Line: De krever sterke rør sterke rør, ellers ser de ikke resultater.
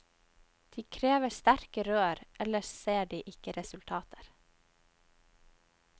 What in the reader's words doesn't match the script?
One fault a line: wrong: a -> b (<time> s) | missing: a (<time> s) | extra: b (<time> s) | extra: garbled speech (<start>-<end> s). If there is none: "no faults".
missing: sterke rør (2.2 s)